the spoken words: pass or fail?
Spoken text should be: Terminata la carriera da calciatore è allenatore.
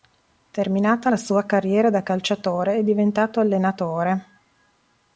fail